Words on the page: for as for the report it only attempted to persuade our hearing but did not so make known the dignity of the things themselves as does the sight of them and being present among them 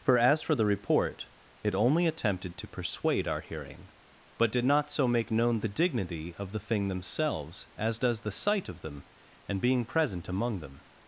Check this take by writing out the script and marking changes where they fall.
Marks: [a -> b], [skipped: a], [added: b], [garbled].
for as for the report it only attempted to persuade our hearing but did not so make known the dignity of the [things -> thing] themselves as does the sight of them and being present among them